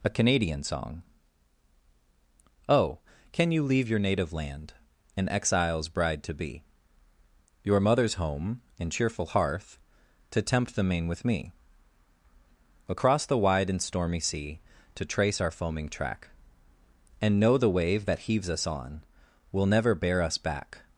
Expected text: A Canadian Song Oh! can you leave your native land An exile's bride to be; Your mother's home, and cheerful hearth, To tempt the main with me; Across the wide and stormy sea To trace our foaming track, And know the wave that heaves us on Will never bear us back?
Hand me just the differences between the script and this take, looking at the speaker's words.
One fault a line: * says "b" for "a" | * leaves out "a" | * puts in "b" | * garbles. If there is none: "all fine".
all fine